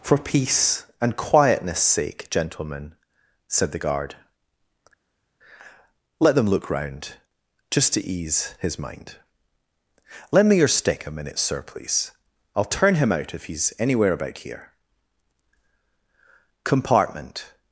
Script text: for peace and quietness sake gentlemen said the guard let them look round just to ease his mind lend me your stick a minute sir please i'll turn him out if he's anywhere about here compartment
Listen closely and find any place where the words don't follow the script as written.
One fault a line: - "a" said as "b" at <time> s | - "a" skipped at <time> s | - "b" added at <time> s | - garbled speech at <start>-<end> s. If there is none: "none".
none